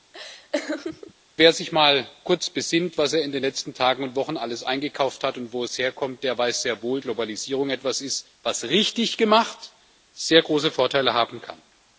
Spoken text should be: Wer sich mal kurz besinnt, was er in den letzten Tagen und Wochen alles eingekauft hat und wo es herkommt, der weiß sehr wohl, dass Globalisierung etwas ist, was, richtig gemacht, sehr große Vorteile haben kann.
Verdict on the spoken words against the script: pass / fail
fail